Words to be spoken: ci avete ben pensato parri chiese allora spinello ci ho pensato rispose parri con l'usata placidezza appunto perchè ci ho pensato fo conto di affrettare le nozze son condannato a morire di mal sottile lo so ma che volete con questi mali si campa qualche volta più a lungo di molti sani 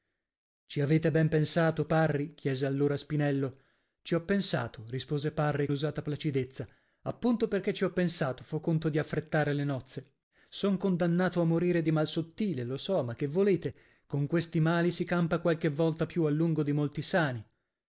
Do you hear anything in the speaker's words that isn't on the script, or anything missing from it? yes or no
yes